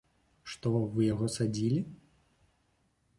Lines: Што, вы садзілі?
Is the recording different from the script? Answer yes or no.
yes